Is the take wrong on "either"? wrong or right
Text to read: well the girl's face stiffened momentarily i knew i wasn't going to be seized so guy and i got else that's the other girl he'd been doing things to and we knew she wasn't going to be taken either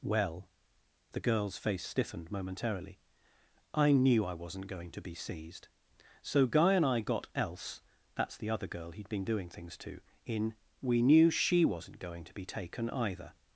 right